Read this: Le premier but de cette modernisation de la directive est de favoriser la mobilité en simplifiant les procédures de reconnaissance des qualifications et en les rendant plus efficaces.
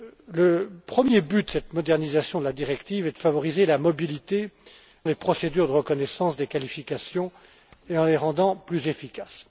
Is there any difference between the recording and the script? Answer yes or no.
yes